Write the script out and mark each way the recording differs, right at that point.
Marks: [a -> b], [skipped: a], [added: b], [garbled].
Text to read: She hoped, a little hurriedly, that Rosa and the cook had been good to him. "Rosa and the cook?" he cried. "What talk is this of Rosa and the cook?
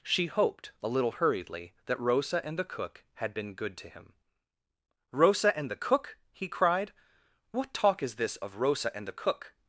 She hoped, a little hurriedly, that Rosa and the cook had been good to him. "Rosa and the cook?" he cried. "What talk is this of Rosa and the cook?